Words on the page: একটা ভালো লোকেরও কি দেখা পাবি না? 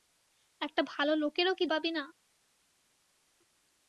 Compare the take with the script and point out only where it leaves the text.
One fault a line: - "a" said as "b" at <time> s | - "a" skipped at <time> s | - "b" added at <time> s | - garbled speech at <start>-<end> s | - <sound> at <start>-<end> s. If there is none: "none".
- "দেখা" skipped at 1.6 s